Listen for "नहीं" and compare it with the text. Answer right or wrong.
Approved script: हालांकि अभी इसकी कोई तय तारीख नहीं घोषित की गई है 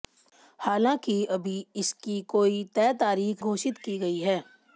wrong